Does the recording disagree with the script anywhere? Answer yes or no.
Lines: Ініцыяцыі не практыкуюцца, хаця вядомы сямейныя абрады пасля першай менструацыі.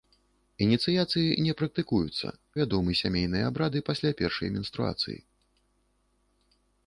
yes